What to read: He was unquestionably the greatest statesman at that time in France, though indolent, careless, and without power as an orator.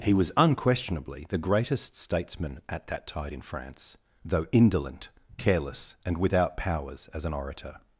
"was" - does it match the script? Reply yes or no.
yes